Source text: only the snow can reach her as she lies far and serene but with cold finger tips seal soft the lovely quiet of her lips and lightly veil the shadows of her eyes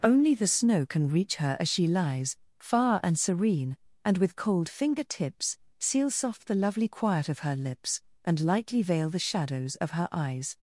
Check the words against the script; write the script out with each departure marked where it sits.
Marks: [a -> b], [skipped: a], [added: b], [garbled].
only the snow can reach her as she lies far and serene [but -> and] with cold finger tips seal soft the lovely quiet of her lips and lightly veil the shadows of her eyes